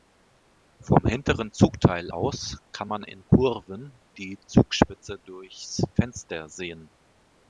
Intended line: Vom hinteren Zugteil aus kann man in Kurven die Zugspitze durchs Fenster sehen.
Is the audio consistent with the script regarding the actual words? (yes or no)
yes